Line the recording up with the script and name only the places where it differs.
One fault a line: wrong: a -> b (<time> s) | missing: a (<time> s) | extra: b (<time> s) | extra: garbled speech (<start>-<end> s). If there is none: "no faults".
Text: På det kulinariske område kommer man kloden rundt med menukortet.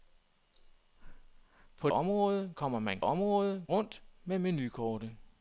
missing: det kulinariske (1.9 s)
wrong: kloden -> område (3.0 s)